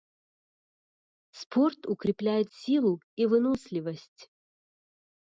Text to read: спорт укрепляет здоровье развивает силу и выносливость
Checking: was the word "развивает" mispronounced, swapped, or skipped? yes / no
yes